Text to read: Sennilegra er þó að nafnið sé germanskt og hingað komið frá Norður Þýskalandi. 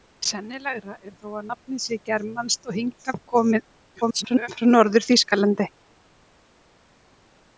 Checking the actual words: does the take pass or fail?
fail